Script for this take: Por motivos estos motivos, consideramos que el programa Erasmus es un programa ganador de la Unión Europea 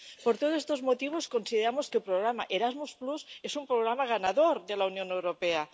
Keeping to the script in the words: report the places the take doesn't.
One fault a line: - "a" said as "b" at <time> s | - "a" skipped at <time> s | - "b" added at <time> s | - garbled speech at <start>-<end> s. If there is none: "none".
- "motivos" said as "todos" at 0.4 s